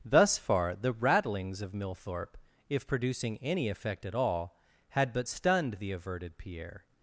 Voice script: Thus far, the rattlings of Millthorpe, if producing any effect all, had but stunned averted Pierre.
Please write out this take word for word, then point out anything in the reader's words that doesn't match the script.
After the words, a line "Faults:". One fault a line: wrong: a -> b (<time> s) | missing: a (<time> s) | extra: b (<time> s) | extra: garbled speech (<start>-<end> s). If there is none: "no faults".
Thus far, the rattlings of Millthorpe, if producing any effect at all, had but stunned the averted Pierre.
Faults:
extra: at (4.0 s)
extra: the (5.7 s)